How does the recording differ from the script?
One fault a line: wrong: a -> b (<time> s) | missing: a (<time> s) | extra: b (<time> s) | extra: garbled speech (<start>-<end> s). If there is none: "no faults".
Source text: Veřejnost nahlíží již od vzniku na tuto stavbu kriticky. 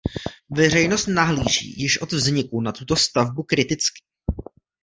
no faults